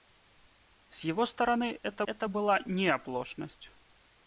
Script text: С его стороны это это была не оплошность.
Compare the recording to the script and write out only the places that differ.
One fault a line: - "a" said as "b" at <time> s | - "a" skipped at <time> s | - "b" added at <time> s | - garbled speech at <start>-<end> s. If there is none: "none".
none